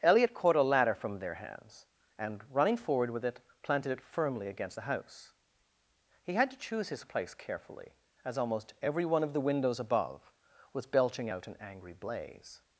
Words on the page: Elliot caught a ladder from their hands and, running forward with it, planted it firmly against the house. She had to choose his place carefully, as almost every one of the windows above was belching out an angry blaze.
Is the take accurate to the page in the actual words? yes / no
no